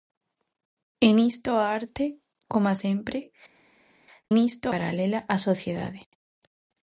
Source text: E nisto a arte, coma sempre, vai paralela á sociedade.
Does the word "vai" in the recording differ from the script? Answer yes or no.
yes